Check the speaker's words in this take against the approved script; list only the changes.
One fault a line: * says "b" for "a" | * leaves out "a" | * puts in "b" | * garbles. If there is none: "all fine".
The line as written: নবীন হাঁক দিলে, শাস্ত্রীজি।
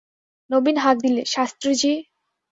all fine